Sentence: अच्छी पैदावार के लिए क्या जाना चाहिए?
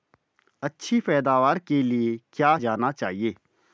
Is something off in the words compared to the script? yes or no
no